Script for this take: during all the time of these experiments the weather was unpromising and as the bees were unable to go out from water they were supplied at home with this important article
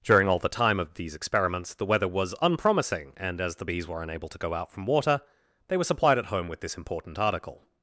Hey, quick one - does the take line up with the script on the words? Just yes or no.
yes